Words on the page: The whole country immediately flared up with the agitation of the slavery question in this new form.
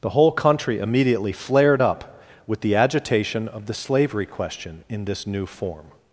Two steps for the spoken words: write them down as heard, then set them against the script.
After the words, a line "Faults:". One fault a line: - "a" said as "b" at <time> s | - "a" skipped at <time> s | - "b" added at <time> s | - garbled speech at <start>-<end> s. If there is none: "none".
The whole country immediately flared up with the agitation of the slavery question in this new form.
Faults:
none